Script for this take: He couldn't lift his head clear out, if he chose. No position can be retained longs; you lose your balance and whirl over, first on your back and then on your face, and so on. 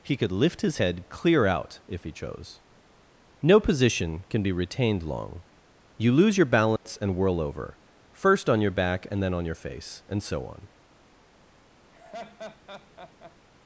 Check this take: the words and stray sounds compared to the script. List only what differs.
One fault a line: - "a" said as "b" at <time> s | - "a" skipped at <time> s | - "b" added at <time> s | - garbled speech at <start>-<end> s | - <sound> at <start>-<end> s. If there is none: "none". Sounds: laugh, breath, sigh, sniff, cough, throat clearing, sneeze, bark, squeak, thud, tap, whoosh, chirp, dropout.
- "couldn't" said as "could" at 0.2 s
- "longs" said as "long" at 5.0 s
- dropout at 6.8-6.9 s
- laugh at 11.9-13.4 s